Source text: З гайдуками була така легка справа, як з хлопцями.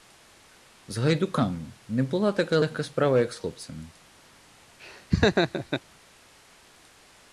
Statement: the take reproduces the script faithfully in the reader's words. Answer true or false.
false